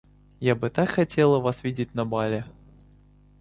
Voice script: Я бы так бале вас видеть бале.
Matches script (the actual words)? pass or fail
fail